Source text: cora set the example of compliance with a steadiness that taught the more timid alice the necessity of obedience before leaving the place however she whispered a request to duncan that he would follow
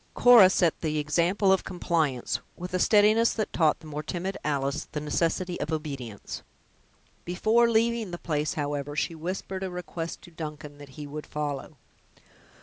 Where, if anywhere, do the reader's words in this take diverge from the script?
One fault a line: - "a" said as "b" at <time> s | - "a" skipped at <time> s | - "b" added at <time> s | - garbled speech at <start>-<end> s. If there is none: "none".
none